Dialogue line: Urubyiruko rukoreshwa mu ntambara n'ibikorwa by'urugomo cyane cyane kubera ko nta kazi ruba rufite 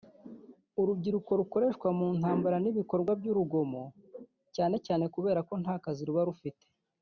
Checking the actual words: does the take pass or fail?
pass